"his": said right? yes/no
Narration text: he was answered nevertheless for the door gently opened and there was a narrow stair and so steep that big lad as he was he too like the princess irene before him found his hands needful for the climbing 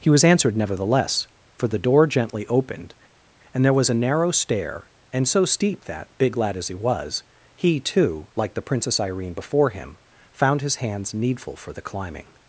yes